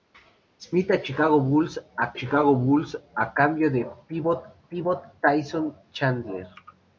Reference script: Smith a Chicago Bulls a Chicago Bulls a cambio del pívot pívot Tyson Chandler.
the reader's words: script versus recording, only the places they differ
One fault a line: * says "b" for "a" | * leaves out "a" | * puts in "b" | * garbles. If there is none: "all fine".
all fine